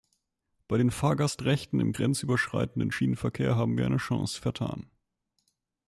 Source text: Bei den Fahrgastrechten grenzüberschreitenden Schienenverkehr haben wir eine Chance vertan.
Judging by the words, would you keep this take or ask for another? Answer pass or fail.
fail